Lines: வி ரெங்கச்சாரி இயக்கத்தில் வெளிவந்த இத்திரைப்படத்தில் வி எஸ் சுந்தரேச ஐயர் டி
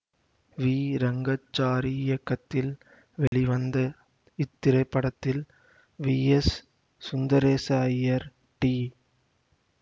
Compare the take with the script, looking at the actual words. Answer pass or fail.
pass